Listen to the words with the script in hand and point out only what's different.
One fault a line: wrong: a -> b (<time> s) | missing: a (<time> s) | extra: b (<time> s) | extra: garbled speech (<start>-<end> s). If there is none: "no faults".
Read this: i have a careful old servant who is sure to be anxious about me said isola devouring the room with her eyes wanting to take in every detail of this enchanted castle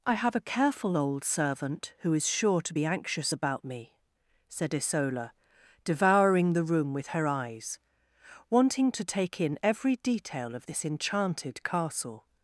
no faults